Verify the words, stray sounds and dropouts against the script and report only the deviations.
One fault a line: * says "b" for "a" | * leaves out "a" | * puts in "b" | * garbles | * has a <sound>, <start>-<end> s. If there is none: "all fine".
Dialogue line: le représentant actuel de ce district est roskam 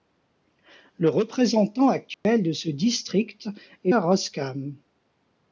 * has a dropout, 2.1-2.2 s